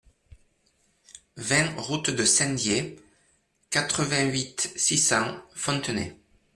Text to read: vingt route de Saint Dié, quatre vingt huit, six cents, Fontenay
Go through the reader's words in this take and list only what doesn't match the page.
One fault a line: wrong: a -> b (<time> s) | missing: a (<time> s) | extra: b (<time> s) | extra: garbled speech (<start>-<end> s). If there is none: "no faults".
no faults